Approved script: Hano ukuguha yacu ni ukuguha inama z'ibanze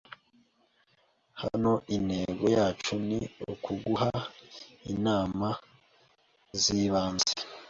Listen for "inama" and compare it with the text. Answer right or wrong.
right